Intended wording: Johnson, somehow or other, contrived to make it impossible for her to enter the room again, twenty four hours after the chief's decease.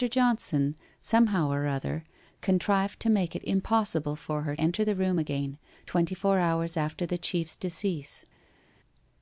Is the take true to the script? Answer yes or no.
no